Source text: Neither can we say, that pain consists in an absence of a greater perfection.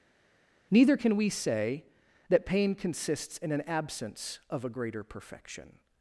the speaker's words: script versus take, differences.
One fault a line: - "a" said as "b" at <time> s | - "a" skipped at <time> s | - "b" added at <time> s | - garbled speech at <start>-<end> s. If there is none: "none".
none